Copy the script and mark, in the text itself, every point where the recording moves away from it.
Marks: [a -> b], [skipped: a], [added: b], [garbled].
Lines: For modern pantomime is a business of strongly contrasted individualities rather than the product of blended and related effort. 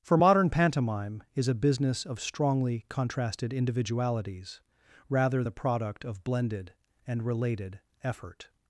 For modern pantomime is a business of strongly contrasted individualities rather [skipped: than] the product of blended and related effort.